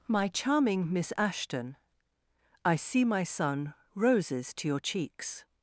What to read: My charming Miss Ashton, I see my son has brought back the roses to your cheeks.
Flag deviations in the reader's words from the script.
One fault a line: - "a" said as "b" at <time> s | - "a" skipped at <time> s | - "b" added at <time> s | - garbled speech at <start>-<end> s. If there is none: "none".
- "has brought back the" skipped at 3.7 s